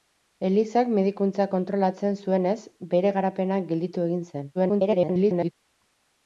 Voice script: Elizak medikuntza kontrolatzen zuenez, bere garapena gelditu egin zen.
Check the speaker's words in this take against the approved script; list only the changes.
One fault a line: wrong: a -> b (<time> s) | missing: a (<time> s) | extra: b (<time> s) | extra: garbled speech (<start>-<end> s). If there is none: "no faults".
extra: garbled speech (4.5-5.5 s)